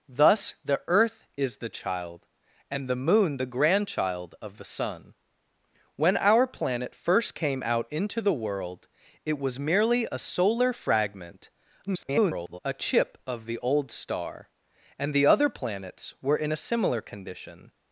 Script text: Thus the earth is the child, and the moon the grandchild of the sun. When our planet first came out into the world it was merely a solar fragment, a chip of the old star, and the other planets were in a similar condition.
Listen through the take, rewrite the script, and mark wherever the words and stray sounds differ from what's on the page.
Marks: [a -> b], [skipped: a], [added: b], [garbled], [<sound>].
Thus the earth is the child, and the moon the grandchild of the sun. When our planet first came out into the world it was merely a solar fragment, [garbled] a chip of the old star, and the other planets were in a similar condition.